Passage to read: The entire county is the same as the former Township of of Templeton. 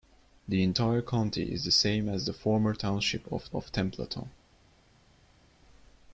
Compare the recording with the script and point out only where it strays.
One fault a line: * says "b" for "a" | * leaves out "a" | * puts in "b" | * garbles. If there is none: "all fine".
all fine